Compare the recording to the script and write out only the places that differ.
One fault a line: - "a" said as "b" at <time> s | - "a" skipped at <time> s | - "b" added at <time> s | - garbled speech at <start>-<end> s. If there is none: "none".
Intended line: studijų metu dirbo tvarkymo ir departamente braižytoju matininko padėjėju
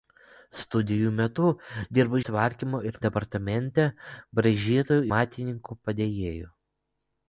none